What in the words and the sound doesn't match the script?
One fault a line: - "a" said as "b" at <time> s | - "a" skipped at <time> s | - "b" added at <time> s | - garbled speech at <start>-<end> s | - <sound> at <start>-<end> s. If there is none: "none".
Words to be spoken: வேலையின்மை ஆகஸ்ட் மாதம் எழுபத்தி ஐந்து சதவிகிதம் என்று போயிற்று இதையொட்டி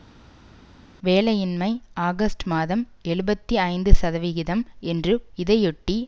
- "போயிற்று" skipped at 5.1 s